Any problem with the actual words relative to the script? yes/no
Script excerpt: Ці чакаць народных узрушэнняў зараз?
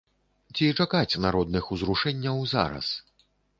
no